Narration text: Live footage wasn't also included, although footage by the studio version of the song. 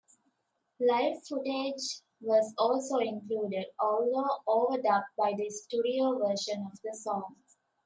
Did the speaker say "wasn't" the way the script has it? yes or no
no